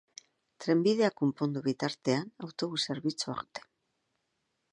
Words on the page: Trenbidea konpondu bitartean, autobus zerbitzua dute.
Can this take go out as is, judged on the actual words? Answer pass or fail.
pass